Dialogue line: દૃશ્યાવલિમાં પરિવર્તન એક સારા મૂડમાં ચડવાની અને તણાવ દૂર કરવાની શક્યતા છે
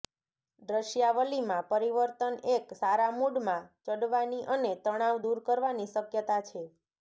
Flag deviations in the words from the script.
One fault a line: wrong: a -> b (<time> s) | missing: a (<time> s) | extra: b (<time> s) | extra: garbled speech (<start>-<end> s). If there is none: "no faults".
no faults